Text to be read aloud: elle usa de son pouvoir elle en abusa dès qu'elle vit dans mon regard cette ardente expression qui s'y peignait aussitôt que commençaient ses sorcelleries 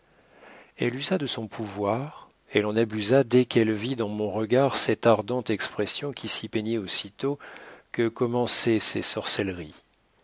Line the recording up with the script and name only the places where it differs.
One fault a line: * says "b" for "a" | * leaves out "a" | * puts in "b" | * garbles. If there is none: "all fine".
all fine